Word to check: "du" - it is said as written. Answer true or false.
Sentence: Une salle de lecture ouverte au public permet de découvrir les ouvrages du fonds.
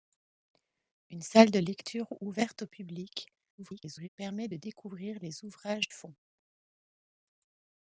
false